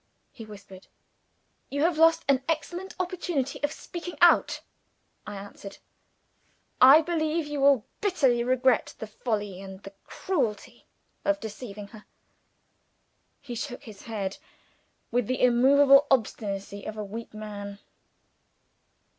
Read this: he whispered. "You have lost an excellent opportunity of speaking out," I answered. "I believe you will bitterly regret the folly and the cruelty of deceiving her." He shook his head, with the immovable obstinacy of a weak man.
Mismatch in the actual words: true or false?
false